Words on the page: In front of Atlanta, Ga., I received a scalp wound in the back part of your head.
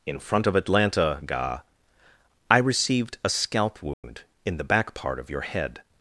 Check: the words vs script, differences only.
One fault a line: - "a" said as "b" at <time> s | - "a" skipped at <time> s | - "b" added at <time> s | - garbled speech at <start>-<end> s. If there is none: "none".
none